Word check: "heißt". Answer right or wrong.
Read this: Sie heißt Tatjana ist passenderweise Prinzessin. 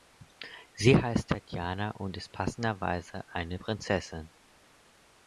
right